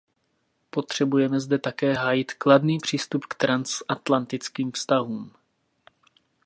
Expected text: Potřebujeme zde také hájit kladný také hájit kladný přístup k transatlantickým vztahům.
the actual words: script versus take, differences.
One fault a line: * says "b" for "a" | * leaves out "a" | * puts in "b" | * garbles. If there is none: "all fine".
* leaves out "také hájit kladný"